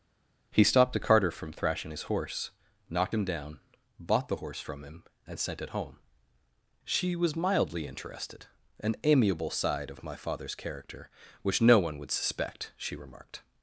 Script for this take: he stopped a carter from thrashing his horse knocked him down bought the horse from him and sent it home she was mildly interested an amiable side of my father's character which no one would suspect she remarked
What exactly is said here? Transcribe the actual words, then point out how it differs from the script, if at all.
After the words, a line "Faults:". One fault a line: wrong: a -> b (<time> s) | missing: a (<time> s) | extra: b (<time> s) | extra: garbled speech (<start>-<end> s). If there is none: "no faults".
he stopped a carter from thrashing his horse knocked him down bought the horse from him and sent it home she was mildly interested an amiable side of my father's character which no one would suspect she remarked
Faults:
no faults